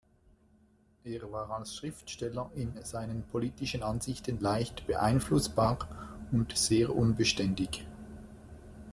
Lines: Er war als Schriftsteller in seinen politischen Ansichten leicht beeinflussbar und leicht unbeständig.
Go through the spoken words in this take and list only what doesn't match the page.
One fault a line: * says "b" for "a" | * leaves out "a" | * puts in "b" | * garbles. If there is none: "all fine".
* says "sehr" for "leicht"